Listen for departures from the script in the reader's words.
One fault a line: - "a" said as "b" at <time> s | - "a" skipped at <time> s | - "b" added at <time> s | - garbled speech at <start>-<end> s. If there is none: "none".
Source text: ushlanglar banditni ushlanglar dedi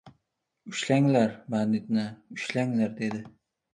none